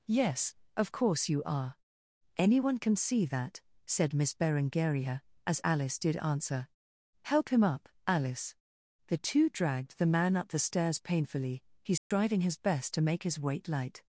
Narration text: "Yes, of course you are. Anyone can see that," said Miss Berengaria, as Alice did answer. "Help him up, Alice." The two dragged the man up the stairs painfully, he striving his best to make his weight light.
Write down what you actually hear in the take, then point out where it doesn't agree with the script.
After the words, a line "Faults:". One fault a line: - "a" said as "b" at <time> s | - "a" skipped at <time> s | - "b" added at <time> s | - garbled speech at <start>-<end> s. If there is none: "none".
"Yes, of course you are. Anyone can see that," said Miss Berengaria, as Alice did answer. "Help him up, Alice." The two dragged the man up the stairs painfully, he striving his best to make his weight light.
Faults:
none